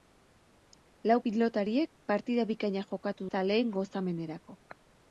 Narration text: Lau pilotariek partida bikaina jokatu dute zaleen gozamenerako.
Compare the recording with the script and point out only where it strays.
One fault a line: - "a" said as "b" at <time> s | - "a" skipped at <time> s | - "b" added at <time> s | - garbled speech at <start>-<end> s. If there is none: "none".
- "dute" skipped at 3.3 s